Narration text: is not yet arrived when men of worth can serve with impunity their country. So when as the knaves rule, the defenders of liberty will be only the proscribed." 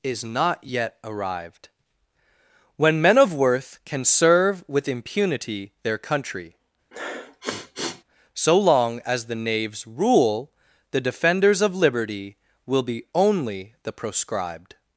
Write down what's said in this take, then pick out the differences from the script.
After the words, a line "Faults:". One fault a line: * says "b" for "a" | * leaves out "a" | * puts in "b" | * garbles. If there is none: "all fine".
is not yet arrived when men of worth can serve with impunity their country. So long as the knaves rule, the defenders of liberty will be only the proscribed."
Faults:
* says "long" for "when"